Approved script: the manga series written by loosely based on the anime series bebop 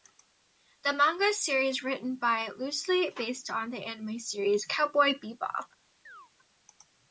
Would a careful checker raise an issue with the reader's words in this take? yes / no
yes